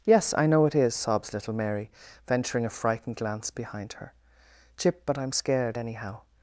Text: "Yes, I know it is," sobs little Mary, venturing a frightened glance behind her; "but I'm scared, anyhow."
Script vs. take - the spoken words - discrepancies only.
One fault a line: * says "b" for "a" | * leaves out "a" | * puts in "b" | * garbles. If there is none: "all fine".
* puts in "chip"